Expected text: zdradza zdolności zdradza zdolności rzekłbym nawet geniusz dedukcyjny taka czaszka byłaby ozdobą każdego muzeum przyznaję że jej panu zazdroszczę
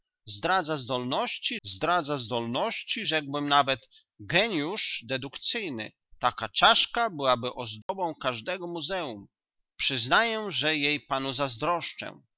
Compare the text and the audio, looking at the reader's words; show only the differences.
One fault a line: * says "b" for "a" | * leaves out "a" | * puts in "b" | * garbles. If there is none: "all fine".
all fine